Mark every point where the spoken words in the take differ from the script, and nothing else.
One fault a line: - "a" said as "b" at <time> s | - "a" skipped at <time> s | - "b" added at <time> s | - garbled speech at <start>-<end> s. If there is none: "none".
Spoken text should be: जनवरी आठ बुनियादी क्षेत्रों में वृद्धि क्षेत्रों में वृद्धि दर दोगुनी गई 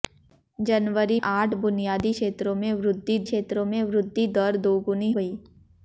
none